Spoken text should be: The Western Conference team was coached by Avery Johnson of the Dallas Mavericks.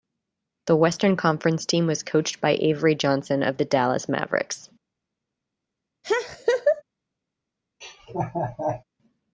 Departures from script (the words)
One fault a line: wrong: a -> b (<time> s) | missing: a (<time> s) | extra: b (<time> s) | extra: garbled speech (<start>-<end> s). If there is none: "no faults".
no faults